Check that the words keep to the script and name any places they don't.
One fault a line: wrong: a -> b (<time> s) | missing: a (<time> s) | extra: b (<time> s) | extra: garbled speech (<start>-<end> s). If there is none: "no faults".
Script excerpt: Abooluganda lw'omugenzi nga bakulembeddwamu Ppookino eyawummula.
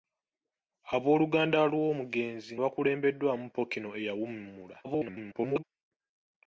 missing: nga (2.5 s)
extra: garbled speech (4.8-5.6 s)